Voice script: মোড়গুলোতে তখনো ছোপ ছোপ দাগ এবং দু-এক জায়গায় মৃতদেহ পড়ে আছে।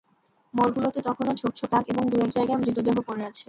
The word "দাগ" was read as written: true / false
true